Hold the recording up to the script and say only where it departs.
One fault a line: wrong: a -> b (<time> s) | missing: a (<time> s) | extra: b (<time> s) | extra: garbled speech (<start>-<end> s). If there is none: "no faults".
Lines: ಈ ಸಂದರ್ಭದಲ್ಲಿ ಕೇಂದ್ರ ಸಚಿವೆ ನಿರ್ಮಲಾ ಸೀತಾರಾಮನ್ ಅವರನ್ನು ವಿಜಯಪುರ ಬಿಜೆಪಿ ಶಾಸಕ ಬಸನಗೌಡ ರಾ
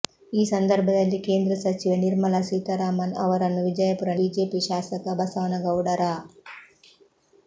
no faults